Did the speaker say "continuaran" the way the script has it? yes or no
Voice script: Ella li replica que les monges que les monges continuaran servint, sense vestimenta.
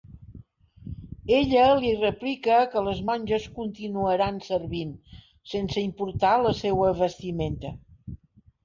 no